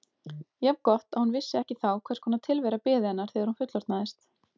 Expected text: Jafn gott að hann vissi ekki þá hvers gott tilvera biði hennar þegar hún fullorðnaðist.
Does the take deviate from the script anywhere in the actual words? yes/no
yes